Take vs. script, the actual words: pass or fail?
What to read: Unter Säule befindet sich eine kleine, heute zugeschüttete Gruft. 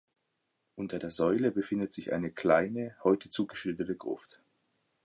fail